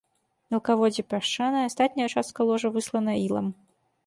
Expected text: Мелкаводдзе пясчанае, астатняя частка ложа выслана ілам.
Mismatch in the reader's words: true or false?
false